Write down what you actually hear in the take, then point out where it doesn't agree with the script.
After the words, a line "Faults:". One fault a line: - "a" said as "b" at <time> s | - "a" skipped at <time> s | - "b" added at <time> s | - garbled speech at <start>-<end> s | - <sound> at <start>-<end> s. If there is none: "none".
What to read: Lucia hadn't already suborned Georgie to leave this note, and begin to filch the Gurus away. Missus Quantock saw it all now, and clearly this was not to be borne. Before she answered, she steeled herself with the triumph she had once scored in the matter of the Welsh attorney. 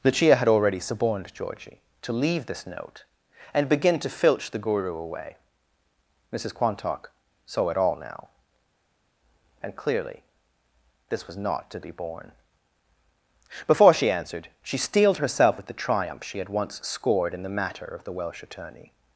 Lucia had already suborned Georgie to leave this note, and begin to filch the Guru away. Missus Quantock saw it all now, and clearly this was not to be borne. Before she answered, she steeled herself with the triumph she had once scored in the matter of the Welsh attorney.
Faults:
- "hadn't" said as "had" at 0.3 s
- "Gurus" said as "Guru" at 4.6 s